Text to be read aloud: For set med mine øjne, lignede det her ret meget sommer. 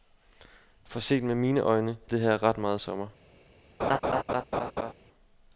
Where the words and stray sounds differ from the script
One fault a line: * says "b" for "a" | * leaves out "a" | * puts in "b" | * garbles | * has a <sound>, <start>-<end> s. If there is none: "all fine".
* leaves out "lignede"
* has a laugh, 3.8-4.9 s